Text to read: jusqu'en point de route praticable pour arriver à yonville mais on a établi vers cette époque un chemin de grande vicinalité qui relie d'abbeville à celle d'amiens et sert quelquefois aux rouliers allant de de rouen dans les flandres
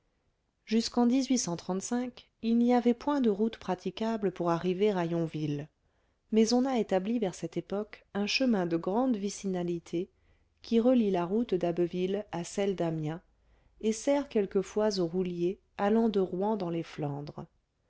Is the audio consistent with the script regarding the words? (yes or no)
no